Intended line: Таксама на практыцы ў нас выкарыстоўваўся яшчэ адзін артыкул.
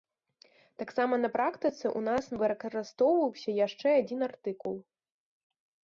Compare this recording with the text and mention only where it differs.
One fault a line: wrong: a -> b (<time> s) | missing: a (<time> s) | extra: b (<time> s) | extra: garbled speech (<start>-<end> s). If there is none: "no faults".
no faults